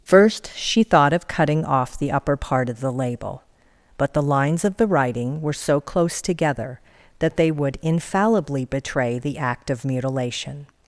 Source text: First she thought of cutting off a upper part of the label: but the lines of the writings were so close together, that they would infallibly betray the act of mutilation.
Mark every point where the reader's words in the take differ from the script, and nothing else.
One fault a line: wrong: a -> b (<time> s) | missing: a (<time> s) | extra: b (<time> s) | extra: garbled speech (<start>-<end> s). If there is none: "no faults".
wrong: a -> the (2.0 s)
wrong: writings -> writing (4.9 s)